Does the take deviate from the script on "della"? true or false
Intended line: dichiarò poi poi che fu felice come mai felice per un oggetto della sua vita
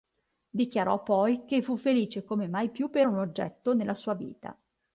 true